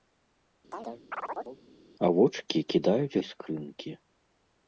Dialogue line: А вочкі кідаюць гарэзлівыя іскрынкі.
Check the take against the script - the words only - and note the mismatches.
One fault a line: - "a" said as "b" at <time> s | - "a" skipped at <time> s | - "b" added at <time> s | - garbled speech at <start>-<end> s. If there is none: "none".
- "гарэзлівыя" skipped at 3.2 s